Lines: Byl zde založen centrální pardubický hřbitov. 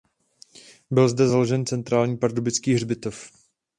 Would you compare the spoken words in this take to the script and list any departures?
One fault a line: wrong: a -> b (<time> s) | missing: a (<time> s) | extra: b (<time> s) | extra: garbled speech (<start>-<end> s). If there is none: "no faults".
no faults